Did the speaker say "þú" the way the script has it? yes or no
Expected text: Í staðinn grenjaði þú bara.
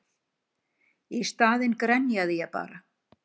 no